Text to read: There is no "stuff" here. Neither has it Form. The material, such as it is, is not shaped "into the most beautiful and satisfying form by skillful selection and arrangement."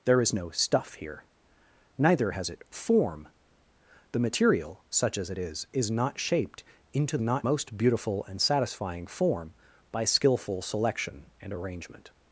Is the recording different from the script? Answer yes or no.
yes